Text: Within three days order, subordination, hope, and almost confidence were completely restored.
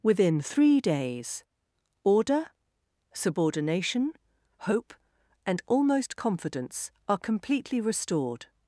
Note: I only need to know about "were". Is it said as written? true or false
false